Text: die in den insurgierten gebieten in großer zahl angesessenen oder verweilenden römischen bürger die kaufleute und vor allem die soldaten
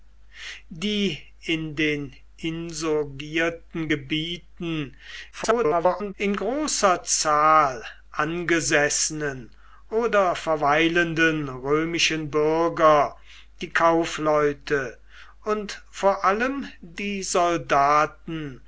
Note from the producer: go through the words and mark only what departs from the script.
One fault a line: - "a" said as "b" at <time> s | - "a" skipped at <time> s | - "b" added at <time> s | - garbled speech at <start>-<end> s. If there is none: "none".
- garbled speech at 5.3-6.1 s